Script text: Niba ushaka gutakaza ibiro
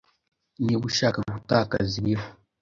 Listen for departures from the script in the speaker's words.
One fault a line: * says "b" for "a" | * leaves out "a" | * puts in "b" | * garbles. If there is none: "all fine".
all fine